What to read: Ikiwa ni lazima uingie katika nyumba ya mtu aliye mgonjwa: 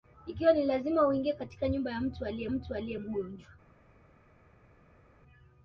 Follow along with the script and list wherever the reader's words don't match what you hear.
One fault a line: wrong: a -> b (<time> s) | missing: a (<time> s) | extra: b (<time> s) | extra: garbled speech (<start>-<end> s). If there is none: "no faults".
extra: mtu aliye (2.5 s)